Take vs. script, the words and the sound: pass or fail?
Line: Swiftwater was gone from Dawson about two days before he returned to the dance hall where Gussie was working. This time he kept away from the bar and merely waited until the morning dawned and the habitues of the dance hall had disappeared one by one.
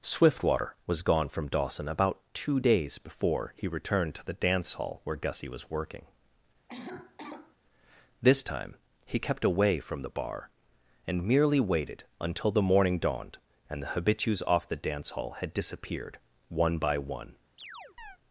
fail